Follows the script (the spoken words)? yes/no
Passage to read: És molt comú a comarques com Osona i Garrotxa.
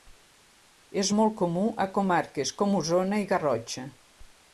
yes